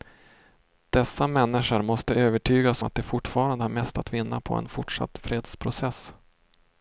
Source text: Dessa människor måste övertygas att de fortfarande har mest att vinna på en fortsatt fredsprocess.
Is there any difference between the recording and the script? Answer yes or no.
no